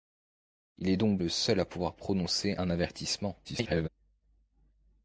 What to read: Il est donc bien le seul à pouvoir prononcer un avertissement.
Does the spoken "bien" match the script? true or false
false